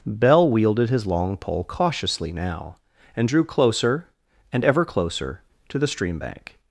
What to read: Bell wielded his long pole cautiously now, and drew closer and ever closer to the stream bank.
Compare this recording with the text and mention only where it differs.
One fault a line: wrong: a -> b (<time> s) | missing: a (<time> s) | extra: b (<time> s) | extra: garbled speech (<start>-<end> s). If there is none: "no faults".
no faults